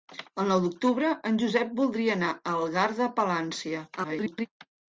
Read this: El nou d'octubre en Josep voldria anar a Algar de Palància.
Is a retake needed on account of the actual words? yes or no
yes